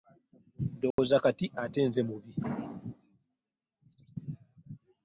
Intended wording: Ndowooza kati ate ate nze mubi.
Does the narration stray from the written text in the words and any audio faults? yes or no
yes